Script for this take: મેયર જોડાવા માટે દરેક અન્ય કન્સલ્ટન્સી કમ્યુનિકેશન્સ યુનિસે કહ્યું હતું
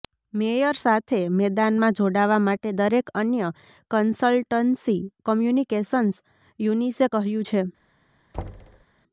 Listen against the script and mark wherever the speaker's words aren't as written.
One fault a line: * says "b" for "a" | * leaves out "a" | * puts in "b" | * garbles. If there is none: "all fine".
* puts in "સાથે મેદાનમાં"
* says "છે" for "હતું"